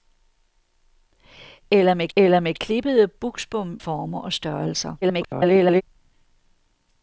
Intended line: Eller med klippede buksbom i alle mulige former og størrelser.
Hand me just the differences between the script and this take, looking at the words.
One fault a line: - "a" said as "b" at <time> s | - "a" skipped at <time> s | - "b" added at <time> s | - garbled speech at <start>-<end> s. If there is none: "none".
- "eller med" added at 2.2 s
- "i alle mulige" skipped at 3.8 s
- garbled speech at 5.0-5.8 s